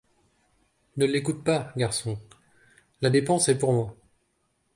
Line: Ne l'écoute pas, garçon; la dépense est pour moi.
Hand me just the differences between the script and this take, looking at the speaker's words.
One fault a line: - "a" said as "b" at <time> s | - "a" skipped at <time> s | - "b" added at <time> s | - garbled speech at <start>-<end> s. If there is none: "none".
none